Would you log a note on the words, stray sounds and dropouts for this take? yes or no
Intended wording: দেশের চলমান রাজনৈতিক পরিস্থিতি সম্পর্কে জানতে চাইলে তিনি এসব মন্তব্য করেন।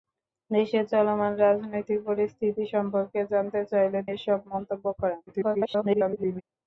yes